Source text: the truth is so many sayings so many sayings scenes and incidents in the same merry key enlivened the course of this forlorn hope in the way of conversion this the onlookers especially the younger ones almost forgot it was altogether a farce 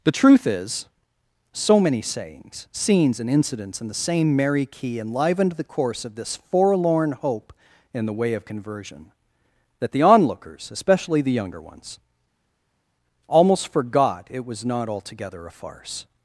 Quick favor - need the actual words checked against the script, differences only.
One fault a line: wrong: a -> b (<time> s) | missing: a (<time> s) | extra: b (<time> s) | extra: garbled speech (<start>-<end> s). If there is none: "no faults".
missing: so many sayings (2.7 s)
wrong: this -> that (9.8 s)
extra: not (14.6 s)